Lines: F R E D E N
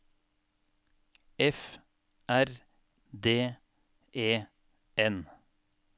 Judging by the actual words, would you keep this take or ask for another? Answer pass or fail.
fail